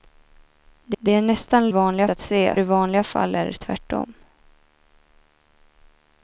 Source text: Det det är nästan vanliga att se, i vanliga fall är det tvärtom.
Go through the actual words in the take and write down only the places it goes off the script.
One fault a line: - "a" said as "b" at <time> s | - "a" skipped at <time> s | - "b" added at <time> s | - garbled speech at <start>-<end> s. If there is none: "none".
none